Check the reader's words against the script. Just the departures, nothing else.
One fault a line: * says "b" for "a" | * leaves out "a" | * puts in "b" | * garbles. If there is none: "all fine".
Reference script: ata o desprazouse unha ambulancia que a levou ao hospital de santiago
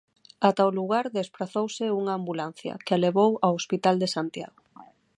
* puts in "lugar"